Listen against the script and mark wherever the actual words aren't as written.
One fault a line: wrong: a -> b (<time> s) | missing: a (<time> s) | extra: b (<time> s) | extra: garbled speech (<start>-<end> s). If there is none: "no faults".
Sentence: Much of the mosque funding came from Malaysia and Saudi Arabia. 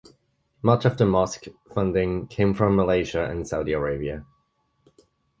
no faults